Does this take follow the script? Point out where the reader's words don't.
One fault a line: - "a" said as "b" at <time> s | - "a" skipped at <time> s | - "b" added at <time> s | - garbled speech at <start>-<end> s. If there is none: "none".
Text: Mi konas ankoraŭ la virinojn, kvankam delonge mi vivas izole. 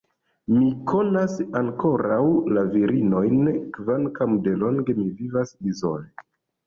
none